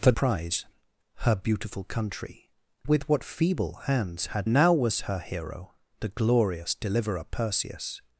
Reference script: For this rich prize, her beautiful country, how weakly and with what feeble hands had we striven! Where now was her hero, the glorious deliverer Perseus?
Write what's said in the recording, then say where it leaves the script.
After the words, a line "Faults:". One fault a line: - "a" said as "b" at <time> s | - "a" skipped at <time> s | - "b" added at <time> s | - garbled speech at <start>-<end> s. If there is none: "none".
For prize, her beautiful country, with what feeble hands had now was her hero, the glorious deliverer Perseus?
Faults:
- "this rich" skipped at 0.1 s
- "how weakly and" skipped at 2.5 s
- "we striven Where" skipped at 4.5 s